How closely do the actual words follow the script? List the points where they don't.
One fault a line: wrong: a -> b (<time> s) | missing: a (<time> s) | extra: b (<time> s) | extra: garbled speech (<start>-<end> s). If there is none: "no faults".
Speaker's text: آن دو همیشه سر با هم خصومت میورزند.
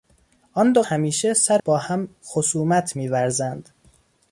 no faults